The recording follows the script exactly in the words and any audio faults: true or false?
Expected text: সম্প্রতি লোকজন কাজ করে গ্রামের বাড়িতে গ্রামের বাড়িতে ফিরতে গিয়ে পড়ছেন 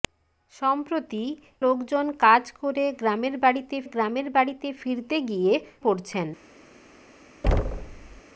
false